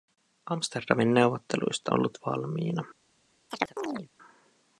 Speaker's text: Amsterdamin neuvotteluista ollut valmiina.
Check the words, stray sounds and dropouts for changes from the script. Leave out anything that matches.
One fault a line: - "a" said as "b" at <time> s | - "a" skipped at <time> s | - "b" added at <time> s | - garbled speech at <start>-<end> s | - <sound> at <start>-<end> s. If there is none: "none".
- chirp at 3.5-4.1 s